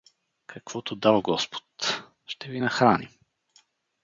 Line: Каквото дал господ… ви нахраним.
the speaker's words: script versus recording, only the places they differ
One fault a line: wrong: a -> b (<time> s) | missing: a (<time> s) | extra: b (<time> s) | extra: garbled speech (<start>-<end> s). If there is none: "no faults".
extra: ще (2.3 s)